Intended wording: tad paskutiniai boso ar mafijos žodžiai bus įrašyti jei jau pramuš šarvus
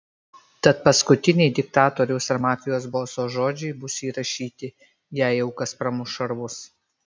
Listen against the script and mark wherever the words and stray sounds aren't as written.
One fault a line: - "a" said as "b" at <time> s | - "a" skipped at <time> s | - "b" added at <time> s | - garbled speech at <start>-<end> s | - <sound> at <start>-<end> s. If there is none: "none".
- "boso" said as "diktatoriaus" at 1.6 s
- "boso" added at 3.0 s
- "kas" added at 5.6 s